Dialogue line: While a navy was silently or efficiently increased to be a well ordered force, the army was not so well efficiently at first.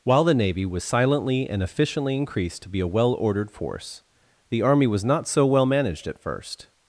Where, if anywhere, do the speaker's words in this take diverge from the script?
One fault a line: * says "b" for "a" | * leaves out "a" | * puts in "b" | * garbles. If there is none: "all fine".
* says "the" for "a"
* says "and" for "or"
* says "managed" for "efficiently"